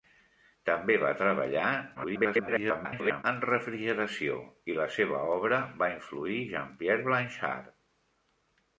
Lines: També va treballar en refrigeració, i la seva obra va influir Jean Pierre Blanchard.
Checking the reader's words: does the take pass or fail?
fail